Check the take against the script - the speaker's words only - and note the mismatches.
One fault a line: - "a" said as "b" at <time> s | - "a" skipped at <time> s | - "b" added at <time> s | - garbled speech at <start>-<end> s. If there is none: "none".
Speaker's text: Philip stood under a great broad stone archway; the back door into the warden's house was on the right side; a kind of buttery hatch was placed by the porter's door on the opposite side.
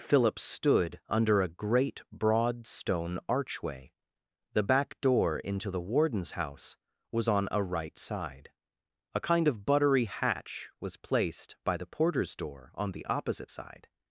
- "the" said as "a" at 7.5 s